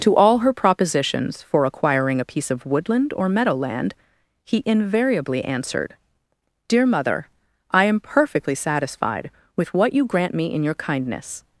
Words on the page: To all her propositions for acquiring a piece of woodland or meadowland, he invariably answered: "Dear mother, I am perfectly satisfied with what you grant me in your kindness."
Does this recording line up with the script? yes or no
yes